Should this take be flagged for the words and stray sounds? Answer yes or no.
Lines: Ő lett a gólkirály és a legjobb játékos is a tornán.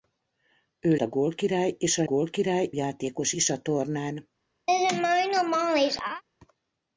yes